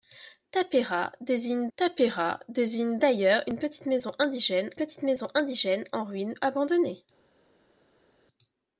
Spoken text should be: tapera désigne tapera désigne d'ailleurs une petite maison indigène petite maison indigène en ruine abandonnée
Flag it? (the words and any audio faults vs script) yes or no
no